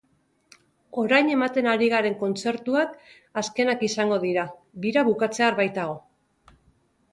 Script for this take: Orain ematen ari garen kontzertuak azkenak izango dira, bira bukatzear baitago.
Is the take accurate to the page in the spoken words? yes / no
yes